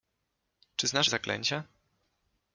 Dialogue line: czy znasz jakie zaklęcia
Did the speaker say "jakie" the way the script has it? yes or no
no